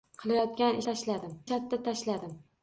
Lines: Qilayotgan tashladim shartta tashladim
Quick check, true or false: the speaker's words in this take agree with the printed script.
true